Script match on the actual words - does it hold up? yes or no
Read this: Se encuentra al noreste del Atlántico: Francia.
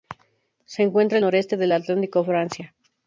yes